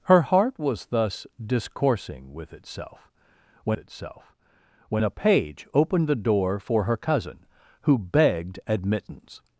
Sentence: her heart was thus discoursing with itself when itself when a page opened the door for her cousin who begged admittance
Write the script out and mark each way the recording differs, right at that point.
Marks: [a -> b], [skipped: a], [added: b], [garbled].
her heart was thus discoursing with itself when itself when a page opened the door for her cousin who begged admittance